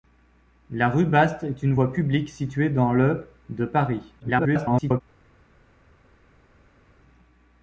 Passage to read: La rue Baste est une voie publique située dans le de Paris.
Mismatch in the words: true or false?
true